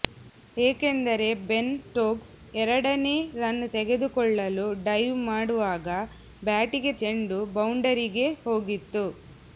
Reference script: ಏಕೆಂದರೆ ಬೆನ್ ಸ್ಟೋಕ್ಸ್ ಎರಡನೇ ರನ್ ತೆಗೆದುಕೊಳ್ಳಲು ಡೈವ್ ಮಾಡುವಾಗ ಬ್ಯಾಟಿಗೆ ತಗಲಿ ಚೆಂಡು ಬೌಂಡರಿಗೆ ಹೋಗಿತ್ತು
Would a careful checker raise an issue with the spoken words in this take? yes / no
yes